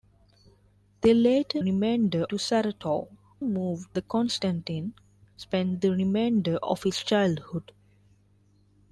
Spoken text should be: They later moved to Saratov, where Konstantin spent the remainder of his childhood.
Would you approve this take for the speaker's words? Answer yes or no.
no